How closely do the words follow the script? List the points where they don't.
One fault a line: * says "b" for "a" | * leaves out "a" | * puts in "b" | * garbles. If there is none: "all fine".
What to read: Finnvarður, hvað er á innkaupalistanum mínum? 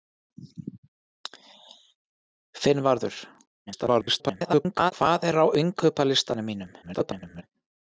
* garbles
* garbles